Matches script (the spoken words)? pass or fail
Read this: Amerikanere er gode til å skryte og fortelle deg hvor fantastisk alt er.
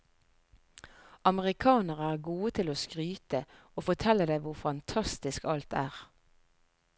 pass